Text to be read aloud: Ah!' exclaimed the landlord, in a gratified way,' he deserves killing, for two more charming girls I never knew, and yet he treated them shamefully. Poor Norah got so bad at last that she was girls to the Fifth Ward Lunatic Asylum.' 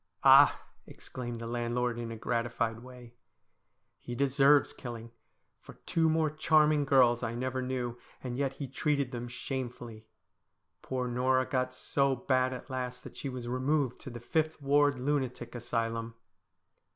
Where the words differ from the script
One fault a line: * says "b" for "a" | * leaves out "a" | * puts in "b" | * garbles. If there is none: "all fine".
* says "removed" for "girls"